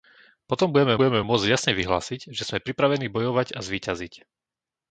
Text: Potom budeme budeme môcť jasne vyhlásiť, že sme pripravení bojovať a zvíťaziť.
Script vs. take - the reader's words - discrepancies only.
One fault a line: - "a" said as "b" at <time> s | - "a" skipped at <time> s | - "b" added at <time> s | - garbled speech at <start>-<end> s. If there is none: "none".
none